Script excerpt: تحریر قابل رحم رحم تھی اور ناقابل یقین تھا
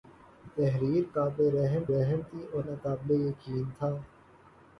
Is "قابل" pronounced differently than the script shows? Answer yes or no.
no